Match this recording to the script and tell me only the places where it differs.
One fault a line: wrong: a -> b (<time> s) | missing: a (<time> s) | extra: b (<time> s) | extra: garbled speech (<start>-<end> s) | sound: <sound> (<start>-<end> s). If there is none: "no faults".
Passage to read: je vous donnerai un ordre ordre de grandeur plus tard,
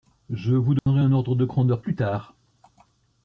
sound: dropout (0.8-0.9 s)
missing: ordre (1.4 s)